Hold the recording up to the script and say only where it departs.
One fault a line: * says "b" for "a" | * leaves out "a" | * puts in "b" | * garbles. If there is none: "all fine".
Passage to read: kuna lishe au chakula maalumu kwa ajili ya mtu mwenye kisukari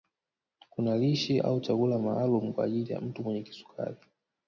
all fine